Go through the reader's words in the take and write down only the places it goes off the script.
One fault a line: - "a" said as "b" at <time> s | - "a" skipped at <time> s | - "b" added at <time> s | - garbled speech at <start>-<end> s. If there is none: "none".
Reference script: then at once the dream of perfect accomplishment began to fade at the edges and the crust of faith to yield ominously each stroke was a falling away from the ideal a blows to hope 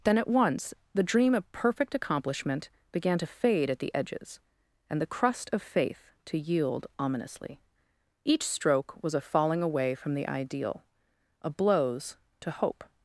none